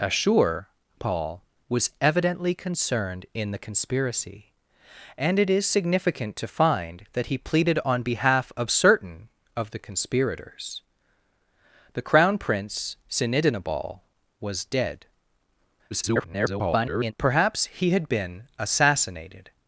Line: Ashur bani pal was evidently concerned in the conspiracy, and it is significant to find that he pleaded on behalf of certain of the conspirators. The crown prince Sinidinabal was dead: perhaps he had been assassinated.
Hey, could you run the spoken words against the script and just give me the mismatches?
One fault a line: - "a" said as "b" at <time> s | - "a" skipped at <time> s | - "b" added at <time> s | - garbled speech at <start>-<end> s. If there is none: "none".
- "bani" skipped at 0.7 s
- garbled speech at 15.9-17.1 s